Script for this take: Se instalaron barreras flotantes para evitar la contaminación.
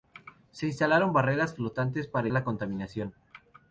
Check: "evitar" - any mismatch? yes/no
yes